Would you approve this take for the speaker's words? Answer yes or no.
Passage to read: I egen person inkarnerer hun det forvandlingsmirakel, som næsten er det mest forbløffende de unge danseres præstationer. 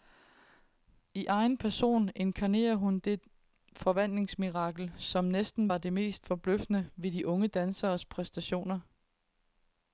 no